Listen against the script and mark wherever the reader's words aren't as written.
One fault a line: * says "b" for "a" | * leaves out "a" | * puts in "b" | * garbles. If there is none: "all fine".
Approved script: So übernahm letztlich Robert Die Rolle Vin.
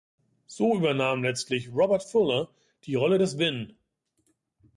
* puts in "Fuller"
* puts in "des"